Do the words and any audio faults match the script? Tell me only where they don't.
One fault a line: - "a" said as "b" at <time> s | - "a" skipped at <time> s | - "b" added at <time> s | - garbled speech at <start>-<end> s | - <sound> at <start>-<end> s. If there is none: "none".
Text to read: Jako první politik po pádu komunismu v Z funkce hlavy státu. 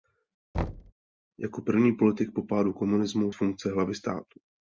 - thud at 0.5-0.9 s